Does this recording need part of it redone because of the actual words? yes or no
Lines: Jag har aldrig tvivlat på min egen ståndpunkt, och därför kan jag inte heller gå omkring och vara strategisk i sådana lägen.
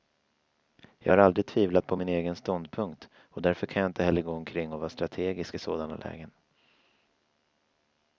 no